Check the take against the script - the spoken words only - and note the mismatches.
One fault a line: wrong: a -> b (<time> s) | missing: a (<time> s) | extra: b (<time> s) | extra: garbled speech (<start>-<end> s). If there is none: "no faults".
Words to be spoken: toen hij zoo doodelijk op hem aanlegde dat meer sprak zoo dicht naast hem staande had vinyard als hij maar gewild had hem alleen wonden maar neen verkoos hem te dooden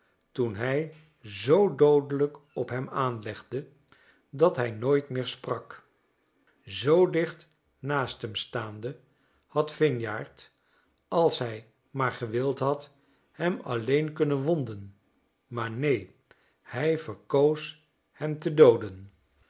extra: hij nooit (4.6 s)
extra: kunnen (14.1 s)
extra: hij (16.6 s)